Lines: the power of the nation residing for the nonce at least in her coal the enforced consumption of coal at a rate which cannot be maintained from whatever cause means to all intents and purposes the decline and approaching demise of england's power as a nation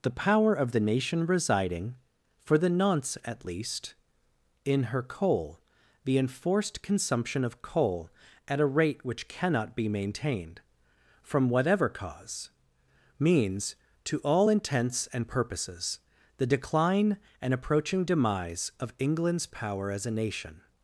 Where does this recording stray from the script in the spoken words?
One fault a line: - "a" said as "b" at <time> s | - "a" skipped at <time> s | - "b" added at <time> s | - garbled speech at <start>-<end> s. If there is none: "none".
none